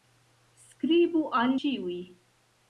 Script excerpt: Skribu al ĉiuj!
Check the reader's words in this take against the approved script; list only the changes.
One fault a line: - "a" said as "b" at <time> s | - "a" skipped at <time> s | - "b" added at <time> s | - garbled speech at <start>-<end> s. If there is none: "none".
none